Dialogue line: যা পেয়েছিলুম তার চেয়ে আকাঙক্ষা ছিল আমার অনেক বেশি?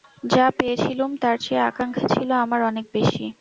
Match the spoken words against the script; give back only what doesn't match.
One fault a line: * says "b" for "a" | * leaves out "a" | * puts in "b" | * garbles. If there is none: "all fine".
all fine